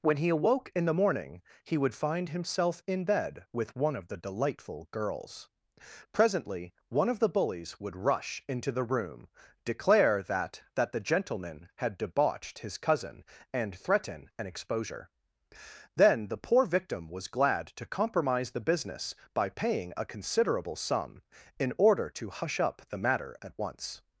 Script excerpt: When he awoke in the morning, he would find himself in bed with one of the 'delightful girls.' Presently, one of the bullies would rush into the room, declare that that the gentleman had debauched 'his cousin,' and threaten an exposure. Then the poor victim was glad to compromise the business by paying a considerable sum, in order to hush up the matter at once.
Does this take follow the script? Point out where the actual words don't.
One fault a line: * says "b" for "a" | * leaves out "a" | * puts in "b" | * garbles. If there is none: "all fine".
all fine